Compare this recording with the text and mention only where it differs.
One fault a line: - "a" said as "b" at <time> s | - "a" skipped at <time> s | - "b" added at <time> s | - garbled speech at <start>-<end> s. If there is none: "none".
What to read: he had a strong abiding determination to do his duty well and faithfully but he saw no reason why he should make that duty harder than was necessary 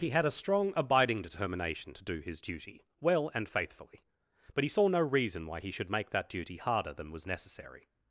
none